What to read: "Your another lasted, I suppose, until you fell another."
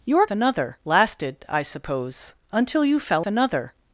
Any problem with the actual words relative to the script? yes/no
no